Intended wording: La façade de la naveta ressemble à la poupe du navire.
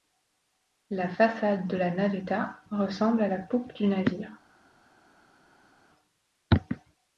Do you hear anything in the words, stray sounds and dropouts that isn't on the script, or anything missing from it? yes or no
no